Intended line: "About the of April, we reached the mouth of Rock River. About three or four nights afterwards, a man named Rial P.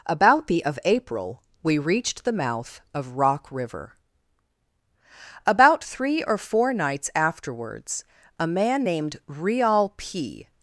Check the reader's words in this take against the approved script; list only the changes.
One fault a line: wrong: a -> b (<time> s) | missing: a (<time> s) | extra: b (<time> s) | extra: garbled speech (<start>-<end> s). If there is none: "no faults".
no faults